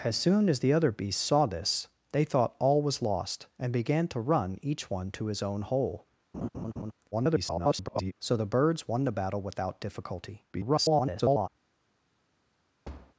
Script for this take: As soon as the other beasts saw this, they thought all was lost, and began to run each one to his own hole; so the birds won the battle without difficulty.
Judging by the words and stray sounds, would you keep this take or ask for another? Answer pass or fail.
fail